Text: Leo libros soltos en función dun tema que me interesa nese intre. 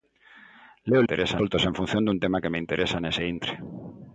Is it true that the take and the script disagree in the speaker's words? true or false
true